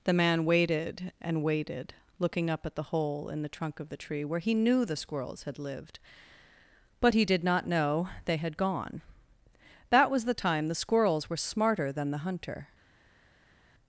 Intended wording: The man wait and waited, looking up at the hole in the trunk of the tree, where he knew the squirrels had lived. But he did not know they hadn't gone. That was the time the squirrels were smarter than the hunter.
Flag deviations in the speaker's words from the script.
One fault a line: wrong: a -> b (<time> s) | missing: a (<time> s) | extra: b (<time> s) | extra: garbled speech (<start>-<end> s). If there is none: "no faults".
wrong: wait -> waited (0.5 s)
wrong: hadn't -> had (8.4 s)